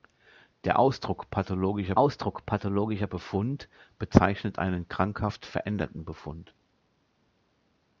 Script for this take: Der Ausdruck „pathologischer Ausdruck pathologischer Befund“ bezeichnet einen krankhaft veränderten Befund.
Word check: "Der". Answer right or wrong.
right